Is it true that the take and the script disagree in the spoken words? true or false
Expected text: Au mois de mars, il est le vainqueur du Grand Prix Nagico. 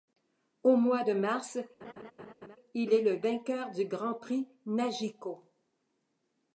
false